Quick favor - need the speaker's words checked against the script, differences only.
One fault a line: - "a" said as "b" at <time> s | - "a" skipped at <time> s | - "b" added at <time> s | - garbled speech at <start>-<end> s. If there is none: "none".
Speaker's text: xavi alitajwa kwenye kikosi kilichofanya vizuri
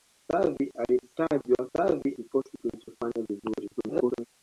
- "kwenye" said as "xavi" at 1.8 s
- garbled speech at 3.8-4.3 s